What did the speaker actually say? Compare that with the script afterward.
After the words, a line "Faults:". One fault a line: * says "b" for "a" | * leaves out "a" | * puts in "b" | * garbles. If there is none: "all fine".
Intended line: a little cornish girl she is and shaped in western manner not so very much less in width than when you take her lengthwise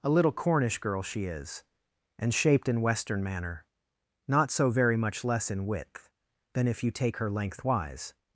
a little cornish girl she is and shaped in western manner not so very much less in width than if you take her lengthwise
Faults:
* says "if" for "when"